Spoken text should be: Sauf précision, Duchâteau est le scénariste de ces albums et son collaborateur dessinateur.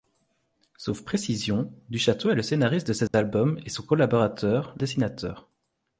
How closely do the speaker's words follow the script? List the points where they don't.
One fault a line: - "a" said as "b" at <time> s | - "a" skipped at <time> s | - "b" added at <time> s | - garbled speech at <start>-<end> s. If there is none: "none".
none